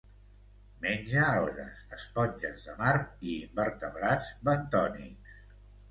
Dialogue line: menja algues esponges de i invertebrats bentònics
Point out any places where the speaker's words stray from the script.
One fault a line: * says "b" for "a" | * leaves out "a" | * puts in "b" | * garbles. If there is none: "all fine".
* puts in "mar"